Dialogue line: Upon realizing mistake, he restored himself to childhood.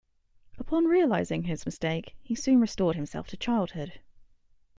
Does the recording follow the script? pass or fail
fail